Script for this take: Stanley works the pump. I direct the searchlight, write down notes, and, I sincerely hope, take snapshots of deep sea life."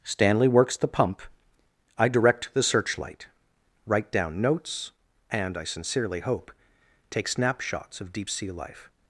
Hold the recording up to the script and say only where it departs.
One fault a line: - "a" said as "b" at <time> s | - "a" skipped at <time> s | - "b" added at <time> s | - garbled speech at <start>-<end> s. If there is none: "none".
none